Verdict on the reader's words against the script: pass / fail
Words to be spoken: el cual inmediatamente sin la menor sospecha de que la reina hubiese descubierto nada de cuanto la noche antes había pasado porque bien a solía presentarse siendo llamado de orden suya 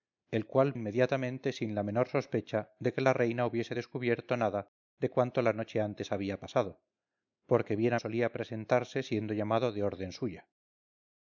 pass